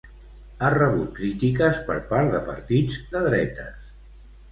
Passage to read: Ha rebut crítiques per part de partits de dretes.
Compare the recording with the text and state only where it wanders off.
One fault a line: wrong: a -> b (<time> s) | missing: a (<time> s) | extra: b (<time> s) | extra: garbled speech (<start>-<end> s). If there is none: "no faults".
no faults